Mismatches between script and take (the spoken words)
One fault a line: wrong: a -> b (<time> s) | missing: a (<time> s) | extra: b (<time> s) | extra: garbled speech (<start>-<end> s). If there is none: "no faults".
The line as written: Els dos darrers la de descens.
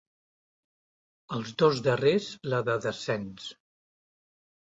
no faults